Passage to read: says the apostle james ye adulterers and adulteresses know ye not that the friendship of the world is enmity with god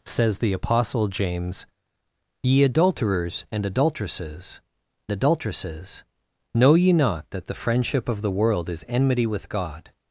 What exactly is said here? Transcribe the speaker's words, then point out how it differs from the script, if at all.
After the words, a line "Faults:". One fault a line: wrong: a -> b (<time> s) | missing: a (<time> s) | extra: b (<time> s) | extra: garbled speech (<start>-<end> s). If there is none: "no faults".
says the apostle james ye adulterers and adulteresses adulteresses know ye not that the friendship of the world is enmity with god
Faults:
extra: adulteresses (5.1 s)